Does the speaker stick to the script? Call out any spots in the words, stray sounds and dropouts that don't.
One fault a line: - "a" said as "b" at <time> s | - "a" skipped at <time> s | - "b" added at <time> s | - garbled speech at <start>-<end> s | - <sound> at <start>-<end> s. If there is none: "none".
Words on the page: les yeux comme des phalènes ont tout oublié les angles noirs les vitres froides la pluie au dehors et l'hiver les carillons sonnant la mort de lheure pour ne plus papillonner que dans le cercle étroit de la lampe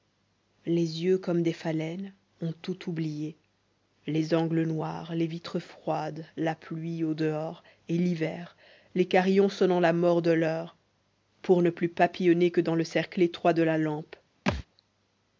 - thud at 14.5-14.7 s